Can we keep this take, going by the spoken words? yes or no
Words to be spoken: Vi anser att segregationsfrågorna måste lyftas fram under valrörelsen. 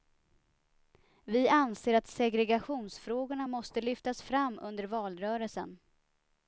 yes